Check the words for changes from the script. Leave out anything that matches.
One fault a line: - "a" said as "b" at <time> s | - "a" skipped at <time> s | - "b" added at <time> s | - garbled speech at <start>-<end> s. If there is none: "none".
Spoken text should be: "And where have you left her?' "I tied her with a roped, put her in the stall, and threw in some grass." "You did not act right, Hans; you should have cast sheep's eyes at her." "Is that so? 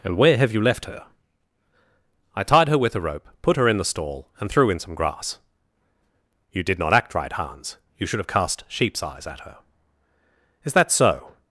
- "roped" said as "rope" at 3.0 s